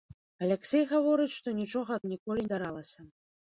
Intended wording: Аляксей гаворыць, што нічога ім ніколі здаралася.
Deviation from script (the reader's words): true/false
false